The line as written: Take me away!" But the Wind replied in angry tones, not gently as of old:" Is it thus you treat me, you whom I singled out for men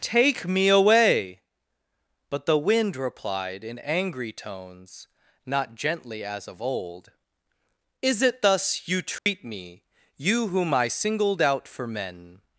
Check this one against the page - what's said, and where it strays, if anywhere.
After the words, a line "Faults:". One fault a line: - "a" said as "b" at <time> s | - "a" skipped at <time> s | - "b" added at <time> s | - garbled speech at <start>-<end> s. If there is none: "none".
Take me away!" But the Wind replied in angry tones, not gently as of old:" Is it thus you treat me, you whom I singled out for men
Faults:
none